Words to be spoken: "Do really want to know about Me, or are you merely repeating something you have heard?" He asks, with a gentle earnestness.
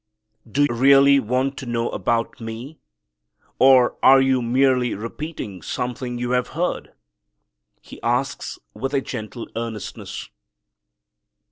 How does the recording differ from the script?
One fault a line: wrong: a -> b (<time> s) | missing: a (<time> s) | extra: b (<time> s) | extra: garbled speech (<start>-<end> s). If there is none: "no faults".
no faults